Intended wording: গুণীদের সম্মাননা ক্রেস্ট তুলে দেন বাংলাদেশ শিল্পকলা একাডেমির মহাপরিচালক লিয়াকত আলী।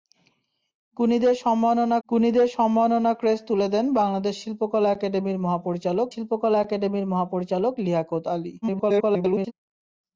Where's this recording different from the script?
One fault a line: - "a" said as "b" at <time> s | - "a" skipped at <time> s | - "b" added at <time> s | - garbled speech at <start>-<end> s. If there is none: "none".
- "গুণীদের সম্মাননা" added at 2.1 s
- "শিল্পকলা একাডেমির মহাপরিচালক" added at 6.1 s
- garbled speech at 8.6-9.5 s